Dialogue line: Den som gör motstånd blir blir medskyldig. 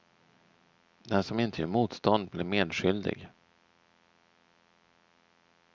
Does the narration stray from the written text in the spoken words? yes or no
yes